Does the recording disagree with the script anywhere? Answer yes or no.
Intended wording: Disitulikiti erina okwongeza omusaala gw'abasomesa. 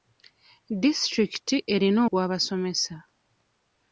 yes